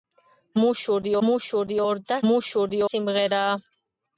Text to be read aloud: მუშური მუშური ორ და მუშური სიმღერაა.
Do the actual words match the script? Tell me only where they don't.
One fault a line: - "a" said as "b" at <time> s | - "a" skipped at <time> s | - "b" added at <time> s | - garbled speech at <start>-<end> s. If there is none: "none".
none